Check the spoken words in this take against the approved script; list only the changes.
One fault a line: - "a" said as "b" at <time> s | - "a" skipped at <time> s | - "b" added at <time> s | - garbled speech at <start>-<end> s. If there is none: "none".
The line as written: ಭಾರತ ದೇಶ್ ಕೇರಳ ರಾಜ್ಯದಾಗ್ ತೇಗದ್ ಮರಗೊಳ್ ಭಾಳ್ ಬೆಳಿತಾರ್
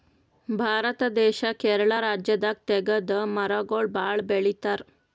none